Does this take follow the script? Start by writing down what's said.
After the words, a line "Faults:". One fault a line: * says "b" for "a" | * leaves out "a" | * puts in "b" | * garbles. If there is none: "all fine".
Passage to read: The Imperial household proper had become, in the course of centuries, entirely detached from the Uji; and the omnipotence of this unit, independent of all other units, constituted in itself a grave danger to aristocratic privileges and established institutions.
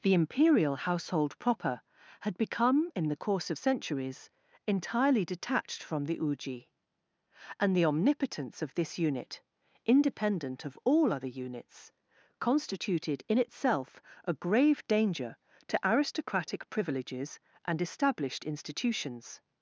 The Imperial household proper had become, in the course of centuries, entirely detached from the Uji; and the omnipotence of this unit, independent of all other units, constituted in itself a grave danger to aristocratic privileges and established institutions.
Faults:
all fine